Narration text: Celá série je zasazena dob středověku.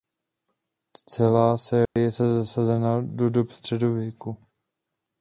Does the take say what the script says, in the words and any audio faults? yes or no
no